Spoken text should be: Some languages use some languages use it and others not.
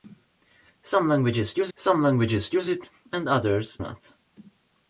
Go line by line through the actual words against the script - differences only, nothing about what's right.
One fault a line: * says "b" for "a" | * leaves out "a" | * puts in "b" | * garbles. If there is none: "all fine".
all fine